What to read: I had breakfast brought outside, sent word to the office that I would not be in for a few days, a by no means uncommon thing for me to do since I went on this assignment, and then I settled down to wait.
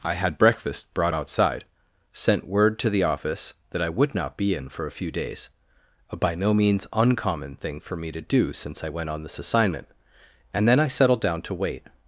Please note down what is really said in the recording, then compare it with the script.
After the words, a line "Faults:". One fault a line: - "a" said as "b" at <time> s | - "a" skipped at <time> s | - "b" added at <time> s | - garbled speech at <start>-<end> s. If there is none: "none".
I had breakfast brought outside, sent word to the office that I would not be in for a few days, a by no means uncommon thing for me to do since I went on this assignment, and then I settled down to wait.
Faults:
none